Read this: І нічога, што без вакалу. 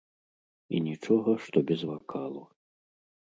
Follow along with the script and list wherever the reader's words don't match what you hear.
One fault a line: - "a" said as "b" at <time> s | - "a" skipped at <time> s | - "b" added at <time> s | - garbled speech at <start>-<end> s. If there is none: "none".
none